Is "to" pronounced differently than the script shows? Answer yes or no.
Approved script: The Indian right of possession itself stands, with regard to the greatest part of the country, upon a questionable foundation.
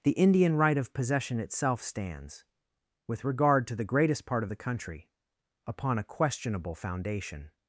no